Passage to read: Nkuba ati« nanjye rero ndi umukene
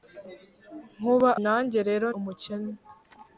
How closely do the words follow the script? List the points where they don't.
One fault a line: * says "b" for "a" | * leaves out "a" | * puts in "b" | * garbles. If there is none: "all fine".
* leaves out "ati"
* leaves out "ndi"